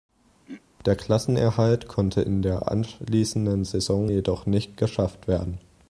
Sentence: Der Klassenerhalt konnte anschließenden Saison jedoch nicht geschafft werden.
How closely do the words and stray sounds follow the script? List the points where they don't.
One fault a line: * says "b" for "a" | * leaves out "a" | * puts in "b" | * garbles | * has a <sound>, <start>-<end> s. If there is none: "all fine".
* has a throat clearing, 0.5-0.6 s
* puts in "in der"